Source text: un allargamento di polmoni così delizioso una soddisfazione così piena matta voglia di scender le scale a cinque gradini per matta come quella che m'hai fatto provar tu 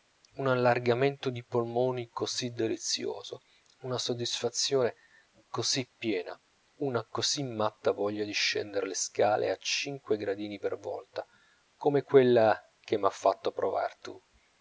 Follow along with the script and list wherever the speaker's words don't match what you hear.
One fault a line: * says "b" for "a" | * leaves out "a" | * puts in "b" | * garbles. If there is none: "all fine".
* puts in "una così"
* says "volta" for "matta"